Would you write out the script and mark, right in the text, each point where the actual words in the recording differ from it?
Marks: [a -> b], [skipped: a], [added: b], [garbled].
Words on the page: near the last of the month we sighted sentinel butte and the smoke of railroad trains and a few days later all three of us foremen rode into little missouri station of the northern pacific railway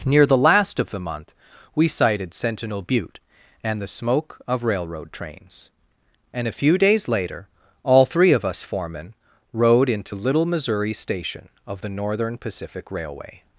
near the last of the month we sighted sentinel butte and the smoke of railroad trains and a few days later all three of us foremen rode into little missouri station of the northern pacific railway